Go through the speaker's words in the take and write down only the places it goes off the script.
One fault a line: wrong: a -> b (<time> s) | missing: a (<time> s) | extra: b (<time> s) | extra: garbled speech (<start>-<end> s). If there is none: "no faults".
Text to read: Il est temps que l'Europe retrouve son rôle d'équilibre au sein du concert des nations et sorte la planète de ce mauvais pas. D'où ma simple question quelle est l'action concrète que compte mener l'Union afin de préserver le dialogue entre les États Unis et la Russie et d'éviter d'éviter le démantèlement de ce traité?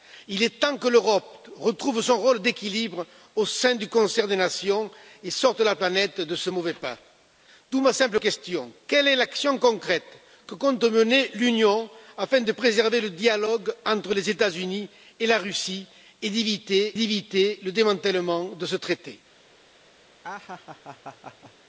no faults